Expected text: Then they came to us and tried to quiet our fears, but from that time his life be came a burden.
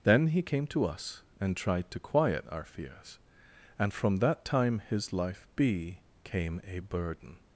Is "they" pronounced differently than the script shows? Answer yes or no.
yes